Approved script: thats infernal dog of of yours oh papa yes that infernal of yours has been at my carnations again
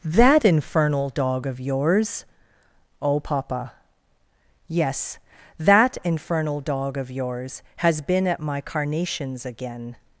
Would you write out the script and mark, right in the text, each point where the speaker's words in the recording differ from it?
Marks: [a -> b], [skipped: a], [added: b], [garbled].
[thats -> that] infernal dog of [skipped: of] yours oh papa yes that infernal [added: dog] of yours has been at my carnations again